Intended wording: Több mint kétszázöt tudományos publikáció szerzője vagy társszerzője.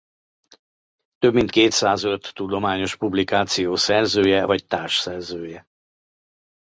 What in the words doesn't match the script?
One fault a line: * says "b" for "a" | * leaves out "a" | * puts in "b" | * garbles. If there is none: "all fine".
all fine